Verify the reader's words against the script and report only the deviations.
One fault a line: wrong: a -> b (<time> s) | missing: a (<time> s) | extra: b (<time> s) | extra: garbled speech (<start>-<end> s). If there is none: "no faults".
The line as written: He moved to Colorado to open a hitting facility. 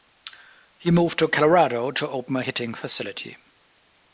no faults